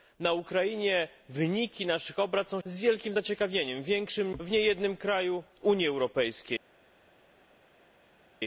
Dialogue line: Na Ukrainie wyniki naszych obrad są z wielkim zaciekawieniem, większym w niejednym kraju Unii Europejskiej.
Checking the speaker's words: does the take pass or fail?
pass